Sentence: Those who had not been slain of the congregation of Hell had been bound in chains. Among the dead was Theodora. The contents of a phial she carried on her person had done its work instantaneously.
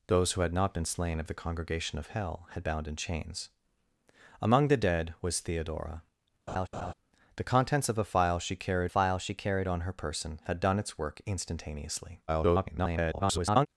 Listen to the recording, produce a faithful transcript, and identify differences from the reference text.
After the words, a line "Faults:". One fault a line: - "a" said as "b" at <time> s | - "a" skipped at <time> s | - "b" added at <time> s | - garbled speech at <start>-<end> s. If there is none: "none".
Those who had not been slain of the congregation of Hell had bound in chains. Among the dead was Theodora. The contents of a phial she carried phial she carried on her person had done its work instantaneously. [garbled]
Faults:
- "been" skipped at 2.6 s
- "phial she carried" added at 8.9 s
- garbled speech at 12.3-13.7 s